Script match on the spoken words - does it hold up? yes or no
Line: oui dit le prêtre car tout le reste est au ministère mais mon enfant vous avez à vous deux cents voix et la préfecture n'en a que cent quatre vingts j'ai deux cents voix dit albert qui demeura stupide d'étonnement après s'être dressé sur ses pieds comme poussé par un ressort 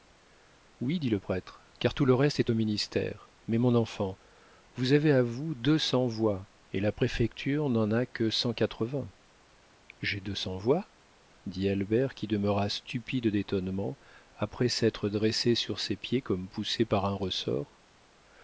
yes